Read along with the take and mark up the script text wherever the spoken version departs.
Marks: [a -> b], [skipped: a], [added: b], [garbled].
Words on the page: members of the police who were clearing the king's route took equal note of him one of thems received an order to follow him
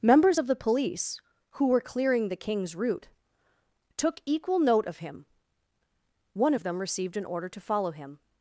members of the police who were clearing the king's route took equal note of him one of [thems -> them] received an order to follow him